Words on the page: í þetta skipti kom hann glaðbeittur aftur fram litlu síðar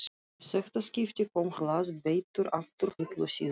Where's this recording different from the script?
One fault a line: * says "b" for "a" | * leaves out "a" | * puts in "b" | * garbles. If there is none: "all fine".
* leaves out "hann"
* leaves out "fram"